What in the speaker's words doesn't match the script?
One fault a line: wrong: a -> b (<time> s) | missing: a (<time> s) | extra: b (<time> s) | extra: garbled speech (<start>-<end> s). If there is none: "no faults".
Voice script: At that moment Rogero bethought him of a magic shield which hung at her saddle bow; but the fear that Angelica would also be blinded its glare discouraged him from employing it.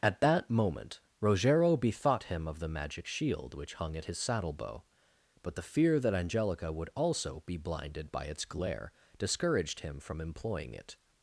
wrong: a -> the (2.6 s)
wrong: her -> his (4.0 s)
extra: by (8.1 s)